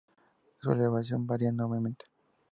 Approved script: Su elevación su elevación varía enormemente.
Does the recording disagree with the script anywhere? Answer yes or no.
yes